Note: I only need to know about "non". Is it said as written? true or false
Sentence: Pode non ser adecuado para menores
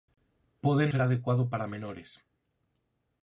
false